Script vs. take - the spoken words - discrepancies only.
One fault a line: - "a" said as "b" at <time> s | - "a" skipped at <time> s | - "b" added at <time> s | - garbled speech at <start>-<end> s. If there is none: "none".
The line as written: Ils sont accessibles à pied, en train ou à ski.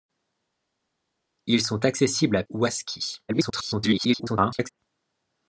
- "pied en train" skipped at 2.4 s
- garbled speech at 3.3-4.7 s